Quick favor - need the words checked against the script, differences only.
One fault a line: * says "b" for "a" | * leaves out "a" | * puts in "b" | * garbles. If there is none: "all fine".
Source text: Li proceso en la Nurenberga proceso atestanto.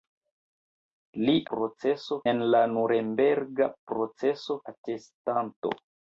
all fine